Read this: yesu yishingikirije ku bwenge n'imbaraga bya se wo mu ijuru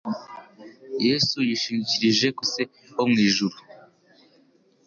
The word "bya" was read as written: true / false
false